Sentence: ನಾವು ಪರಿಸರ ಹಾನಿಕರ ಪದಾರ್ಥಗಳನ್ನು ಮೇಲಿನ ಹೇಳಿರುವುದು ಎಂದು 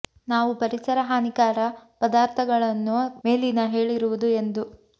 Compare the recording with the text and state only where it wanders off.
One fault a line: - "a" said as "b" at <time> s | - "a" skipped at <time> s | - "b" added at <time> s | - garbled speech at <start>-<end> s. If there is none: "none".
none